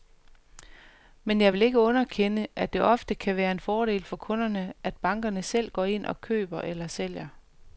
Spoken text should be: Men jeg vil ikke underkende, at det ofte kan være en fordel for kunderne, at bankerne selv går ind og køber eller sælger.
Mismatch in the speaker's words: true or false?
false